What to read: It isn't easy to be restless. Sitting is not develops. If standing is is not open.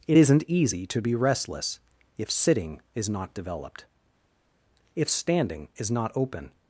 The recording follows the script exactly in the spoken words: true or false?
false